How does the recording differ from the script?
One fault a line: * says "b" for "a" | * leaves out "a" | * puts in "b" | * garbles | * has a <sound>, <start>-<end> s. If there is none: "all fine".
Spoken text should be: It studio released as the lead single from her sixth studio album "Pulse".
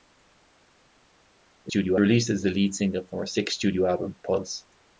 all fine